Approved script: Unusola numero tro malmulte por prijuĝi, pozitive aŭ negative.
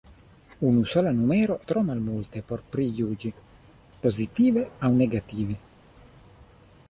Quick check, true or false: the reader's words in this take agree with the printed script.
true